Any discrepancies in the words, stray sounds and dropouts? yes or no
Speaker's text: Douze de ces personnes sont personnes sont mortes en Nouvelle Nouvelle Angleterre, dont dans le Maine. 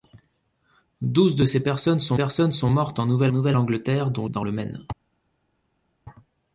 no